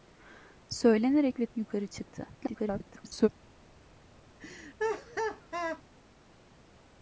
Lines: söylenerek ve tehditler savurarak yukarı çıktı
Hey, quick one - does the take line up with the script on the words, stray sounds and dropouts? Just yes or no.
no